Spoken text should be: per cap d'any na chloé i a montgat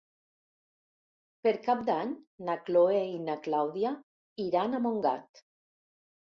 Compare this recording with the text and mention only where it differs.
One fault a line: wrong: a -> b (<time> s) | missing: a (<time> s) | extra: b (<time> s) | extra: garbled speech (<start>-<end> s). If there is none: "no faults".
extra: na clàudia iran (3.3 s)